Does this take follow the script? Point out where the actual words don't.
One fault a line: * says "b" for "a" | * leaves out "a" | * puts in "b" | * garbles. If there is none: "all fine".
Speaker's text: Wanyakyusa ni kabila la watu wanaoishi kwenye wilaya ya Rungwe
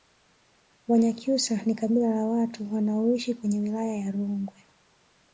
all fine